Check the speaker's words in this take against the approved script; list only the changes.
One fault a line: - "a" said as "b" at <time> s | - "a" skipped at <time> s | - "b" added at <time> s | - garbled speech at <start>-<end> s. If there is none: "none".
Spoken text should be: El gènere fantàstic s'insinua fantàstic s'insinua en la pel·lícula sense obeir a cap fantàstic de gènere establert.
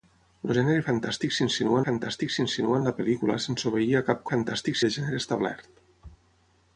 none